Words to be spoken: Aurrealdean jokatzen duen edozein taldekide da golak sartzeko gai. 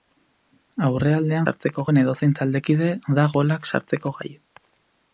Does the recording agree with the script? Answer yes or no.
no